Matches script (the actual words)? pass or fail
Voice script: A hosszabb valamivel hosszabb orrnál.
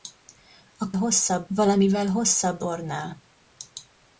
pass